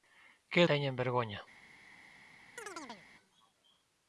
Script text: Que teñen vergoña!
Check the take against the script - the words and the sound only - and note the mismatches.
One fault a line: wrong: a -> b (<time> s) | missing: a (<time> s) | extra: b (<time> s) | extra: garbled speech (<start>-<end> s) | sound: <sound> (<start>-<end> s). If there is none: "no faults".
sound: chirp (2.6-3.1 s)